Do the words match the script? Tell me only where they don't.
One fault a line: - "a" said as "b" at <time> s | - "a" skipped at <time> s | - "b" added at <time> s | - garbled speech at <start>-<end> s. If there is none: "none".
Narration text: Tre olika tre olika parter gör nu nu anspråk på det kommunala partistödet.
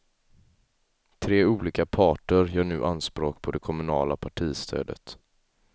- "tre olika" skipped at 1.9 s
- "nu" skipped at 2.9 s